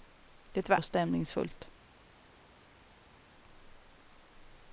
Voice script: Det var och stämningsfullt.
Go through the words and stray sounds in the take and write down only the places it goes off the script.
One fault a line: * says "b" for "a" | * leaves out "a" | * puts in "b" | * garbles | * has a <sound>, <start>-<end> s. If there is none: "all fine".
all fine